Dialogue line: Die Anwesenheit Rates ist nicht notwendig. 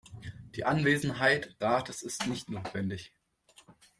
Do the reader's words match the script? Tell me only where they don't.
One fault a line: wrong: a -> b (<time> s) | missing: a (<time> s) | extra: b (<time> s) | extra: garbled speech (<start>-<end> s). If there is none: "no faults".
no faults